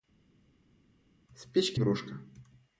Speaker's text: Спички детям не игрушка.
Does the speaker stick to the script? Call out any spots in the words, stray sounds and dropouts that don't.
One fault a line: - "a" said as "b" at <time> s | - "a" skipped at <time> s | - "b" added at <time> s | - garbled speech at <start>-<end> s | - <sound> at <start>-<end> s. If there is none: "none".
- "детям не" skipped at 1.8 s